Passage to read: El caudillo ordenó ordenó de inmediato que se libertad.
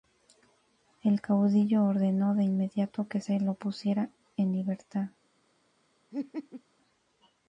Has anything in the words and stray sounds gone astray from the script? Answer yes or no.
yes